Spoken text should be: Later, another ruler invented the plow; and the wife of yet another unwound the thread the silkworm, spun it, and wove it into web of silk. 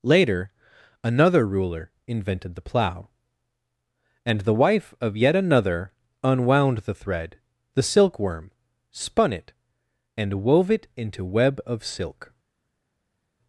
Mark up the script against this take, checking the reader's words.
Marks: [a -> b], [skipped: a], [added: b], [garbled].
Later, another ruler invented the plow; and the wife of yet another unwound the thread the silkworm, spun it, and wove it into web of silk.